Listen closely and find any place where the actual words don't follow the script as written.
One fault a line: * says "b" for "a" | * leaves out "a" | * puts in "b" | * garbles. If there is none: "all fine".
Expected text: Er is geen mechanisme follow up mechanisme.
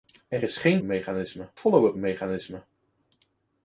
all fine